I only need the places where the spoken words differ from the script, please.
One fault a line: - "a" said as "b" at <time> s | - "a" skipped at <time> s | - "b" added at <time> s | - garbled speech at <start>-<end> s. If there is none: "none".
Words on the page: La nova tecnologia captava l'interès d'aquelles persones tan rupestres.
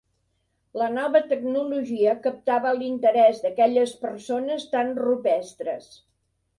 none